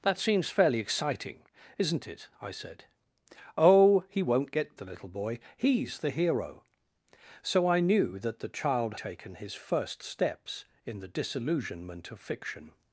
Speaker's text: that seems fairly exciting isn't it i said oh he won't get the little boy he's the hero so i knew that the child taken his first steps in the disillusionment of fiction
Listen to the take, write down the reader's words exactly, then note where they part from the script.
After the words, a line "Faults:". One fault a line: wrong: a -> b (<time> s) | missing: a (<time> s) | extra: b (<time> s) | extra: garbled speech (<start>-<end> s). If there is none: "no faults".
that seems fairly exciting isn't it i said oh he won't get the little boy he's the hero so i knew that the child taken his first steps in the disillusionment of fiction
Faults:
no faults